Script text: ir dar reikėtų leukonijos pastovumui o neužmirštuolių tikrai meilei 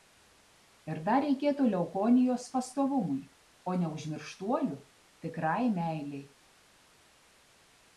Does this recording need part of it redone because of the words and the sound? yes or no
no